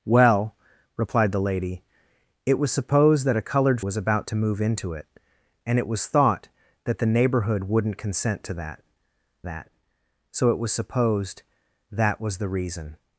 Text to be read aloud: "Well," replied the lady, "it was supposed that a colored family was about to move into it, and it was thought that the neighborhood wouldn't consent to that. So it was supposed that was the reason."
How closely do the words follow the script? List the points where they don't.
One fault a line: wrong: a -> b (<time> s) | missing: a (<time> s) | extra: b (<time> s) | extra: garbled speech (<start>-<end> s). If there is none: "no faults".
missing: family (3.8 s)
extra: that (9.4 s)